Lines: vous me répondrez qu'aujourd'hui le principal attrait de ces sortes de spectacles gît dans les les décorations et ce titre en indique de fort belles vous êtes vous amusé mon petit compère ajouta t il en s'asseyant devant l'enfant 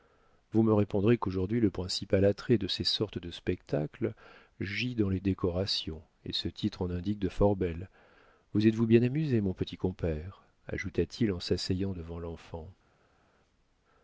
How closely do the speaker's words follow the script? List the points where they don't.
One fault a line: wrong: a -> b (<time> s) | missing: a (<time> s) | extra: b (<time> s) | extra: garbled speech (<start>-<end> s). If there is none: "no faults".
missing: les (5.2 s)
extra: bien (8.9 s)